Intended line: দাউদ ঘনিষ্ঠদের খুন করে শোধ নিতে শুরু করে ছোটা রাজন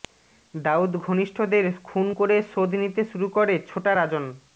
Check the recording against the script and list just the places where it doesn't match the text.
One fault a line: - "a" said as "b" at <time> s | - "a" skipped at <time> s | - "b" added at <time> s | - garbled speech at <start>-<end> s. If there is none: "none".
none